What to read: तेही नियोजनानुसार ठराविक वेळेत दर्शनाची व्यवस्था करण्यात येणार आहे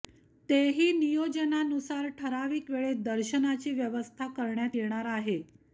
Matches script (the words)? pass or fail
pass